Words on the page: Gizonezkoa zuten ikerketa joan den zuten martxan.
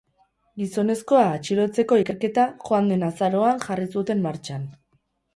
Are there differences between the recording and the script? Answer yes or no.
yes